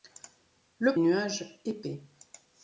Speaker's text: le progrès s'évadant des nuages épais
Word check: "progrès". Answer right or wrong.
wrong